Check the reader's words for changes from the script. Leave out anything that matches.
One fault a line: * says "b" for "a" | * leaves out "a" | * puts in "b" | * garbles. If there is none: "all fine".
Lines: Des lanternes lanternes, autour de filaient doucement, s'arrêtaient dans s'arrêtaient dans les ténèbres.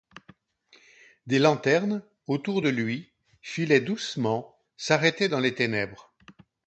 * leaves out "lanternes"
* puts in "lui"
* leaves out "s'arrêtaient dans"